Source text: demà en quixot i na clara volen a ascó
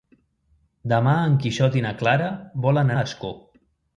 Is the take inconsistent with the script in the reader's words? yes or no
no